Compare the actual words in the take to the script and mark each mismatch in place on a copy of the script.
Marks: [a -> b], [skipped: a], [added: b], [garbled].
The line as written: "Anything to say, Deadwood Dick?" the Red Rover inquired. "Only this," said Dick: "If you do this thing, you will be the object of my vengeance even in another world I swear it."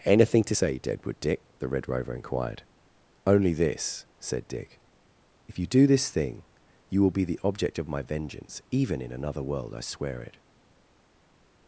"Anything to say, Deadwood Dick?" the Red Rover inquired. "Only this," said Dick: "If you do this thing, you will be the object of my vengeance even in another world I swear it."